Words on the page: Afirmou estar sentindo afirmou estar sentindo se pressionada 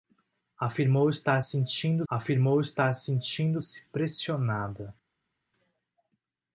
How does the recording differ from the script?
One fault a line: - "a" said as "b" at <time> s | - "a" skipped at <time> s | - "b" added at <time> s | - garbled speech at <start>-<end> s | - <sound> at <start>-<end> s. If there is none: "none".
none